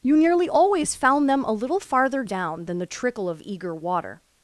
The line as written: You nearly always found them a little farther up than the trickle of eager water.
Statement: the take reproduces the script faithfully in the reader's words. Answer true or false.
false